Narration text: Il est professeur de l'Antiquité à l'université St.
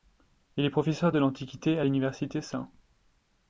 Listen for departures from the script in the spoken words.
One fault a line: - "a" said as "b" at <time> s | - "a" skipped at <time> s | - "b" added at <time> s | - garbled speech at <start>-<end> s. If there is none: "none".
none